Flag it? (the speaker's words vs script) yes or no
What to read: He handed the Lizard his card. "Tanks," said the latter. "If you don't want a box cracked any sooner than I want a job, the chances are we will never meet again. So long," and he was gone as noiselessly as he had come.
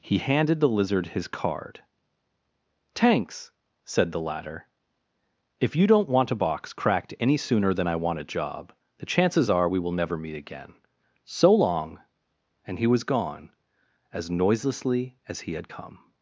no